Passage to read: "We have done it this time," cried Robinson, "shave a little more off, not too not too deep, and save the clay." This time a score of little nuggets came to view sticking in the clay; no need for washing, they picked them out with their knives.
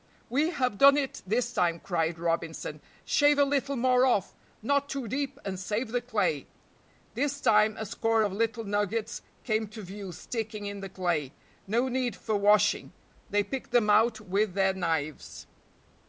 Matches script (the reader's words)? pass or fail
fail